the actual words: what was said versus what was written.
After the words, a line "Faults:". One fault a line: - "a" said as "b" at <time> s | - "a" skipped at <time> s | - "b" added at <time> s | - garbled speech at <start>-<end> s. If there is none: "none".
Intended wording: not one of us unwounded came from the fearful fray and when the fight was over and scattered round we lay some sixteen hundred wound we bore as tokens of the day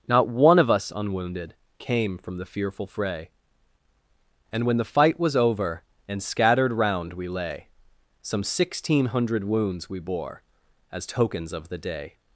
not one of us unwounded came from the fearful fray and when the fight was over and scattered round we lay some sixteen hundred wounds we bore as tokens of the day
Faults:
- "wound" said as "wounds" at 9.4 s